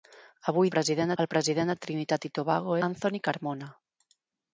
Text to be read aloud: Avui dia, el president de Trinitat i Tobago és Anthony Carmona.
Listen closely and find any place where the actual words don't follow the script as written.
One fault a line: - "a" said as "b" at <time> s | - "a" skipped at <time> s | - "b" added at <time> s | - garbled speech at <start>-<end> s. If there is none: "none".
- "dia" said as "president" at 0.8 s
- "és" skipped at 2.8 s